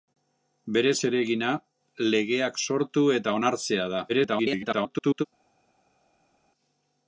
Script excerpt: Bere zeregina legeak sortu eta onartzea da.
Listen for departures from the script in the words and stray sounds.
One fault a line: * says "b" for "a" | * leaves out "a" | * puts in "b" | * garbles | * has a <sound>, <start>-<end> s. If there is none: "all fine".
* garbles